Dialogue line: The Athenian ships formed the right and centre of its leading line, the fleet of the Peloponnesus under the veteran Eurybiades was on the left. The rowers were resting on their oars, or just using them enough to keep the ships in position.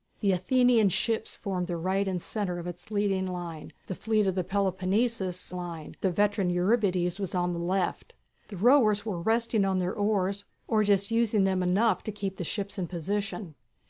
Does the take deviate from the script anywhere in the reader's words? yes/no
yes